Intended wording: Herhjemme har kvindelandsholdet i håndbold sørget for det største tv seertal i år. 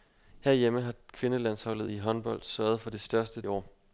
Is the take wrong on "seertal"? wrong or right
wrong